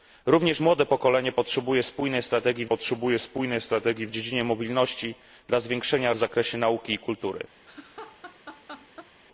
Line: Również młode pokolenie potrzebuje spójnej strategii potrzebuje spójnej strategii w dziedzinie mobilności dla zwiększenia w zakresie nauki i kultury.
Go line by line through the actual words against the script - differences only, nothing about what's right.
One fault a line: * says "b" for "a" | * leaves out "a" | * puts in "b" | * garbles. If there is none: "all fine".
all fine